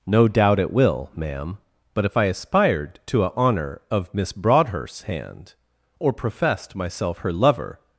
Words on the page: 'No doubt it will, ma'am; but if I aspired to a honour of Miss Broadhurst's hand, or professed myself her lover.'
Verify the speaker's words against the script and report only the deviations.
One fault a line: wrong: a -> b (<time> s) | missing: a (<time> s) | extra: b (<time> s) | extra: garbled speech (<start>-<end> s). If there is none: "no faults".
no faults